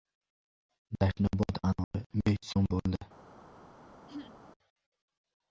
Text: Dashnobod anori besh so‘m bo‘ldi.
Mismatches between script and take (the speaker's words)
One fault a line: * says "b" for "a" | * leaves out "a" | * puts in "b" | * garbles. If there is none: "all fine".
all fine